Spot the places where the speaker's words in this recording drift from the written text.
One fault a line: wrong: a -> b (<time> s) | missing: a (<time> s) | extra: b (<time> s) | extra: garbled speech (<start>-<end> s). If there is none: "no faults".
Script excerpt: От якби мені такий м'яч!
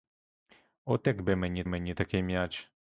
extra: мені (1.7 s)